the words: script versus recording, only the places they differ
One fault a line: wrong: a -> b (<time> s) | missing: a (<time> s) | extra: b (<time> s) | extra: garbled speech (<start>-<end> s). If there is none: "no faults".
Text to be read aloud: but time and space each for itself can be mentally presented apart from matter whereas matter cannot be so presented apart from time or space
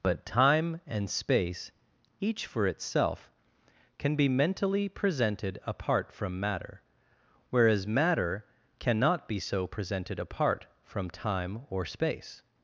no faults